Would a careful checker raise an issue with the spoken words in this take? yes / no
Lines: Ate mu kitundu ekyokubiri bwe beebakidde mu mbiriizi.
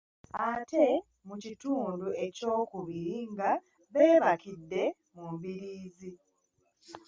yes